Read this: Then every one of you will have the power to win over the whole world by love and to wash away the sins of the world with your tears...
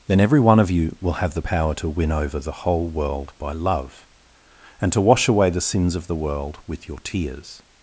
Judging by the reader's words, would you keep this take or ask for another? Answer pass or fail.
pass